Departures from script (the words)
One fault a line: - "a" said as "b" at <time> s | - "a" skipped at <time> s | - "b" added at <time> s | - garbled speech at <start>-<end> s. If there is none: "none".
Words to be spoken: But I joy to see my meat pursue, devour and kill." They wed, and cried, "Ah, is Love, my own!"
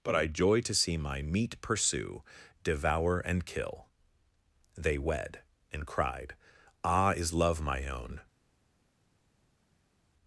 none